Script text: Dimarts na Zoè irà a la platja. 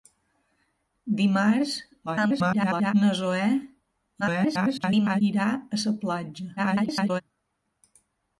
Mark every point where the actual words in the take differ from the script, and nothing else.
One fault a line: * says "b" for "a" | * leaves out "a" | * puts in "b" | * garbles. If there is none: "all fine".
* garbles
* garbles
* garbles